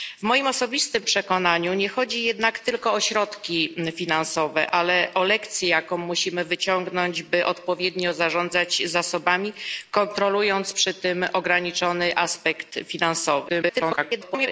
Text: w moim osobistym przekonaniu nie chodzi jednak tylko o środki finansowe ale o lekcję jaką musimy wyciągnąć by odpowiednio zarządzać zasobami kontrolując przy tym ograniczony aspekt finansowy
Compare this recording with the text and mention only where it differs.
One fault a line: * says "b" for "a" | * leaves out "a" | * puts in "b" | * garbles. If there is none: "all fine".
* garbles